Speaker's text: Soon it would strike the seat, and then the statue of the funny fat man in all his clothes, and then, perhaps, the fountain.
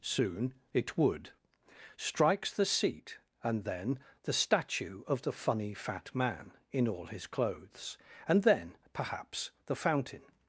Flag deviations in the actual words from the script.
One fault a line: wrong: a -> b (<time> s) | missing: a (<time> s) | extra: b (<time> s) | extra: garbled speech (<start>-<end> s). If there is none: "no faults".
wrong: strike -> strikes (2.0 s)